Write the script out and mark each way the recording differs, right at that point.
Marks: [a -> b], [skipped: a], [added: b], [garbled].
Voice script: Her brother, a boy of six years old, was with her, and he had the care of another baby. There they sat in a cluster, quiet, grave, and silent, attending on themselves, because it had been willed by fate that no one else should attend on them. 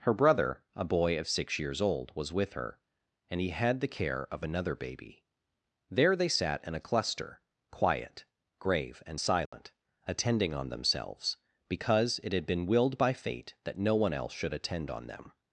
Her brother, a boy of six years old, was with her, and he had the care of another baby. There they sat in a cluster, quiet, grave, and silent, attending on themselves, because it had been willed by fate that no one else should attend on them.